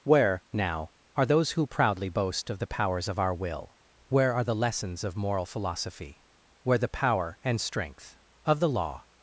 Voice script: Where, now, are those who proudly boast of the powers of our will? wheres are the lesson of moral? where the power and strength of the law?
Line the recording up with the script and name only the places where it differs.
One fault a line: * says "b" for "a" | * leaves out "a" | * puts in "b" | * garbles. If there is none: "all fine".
* says "where" for "wheres"
* says "lessons" for "lesson"
* puts in "philosophy"